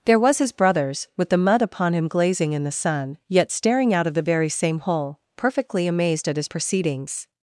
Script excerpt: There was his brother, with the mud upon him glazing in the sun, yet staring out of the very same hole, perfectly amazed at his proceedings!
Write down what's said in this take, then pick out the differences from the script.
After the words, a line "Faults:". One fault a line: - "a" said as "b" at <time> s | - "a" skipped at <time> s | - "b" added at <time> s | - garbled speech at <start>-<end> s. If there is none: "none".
There was his brothers, with the mud upon him glazing in the sun, yet staring out of the very same hole, perfectly amazed at his proceedings!
Faults:
- "brother" said as "brothers" at 0.5 s